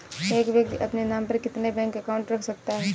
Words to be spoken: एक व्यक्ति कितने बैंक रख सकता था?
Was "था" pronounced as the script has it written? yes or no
no